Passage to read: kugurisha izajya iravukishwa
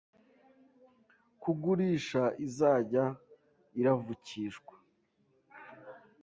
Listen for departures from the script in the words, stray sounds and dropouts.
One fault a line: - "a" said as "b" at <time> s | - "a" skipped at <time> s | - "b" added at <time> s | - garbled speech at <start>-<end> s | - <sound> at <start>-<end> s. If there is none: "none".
none